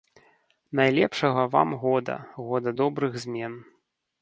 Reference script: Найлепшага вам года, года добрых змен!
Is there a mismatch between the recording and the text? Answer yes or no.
no